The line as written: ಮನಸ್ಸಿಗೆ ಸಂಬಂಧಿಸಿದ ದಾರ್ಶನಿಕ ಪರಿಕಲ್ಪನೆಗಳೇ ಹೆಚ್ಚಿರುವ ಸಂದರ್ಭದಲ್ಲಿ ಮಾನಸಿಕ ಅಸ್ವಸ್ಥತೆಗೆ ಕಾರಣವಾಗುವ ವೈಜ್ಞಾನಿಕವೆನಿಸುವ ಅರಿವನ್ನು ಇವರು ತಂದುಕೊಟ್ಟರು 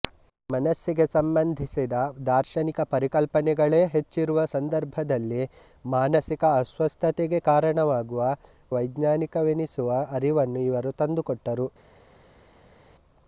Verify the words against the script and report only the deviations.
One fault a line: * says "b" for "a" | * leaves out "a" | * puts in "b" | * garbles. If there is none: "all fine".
all fine